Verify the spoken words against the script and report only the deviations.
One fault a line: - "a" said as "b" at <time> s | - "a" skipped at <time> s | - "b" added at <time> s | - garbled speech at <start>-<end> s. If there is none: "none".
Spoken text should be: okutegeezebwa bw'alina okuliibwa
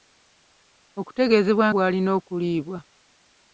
none